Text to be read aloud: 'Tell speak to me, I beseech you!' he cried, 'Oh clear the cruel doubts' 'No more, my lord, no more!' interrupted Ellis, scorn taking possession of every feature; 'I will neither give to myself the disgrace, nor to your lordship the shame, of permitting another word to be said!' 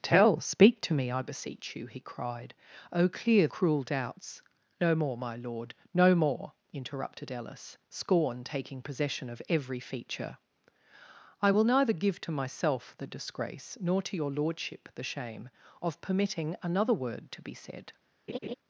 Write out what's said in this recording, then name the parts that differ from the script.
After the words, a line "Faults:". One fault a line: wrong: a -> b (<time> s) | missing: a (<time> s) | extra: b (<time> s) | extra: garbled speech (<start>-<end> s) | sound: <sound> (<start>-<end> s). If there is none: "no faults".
'Tell speak to me, I beseech you!' he cried, 'Oh clear cruel doubts' 'No more, my lord, no more!' interrupted Ellis, scorn taking possession of every feature; 'I will neither give to myself the disgrace, nor to your lordship the shame, of permitting another word to be said!'
Faults:
missing: the (3.5 s)
sound: laugh (18.3-18.6 s)